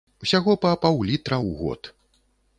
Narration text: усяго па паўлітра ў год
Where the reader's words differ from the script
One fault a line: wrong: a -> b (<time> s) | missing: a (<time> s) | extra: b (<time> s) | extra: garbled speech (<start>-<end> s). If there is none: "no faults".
no faults